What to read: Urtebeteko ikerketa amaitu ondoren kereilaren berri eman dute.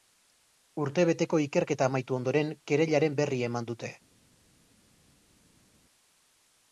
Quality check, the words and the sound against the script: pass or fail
pass